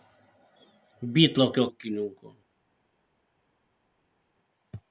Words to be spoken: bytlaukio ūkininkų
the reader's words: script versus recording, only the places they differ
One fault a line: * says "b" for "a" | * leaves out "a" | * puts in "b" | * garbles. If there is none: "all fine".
all fine